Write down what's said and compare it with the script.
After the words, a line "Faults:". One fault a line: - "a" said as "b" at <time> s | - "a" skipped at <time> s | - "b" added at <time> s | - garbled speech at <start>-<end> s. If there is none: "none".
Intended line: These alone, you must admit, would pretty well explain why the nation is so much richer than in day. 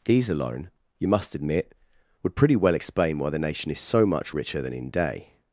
These alone, you must admit, would pretty well explain why the nation is so much richer than in day.
Faults:
none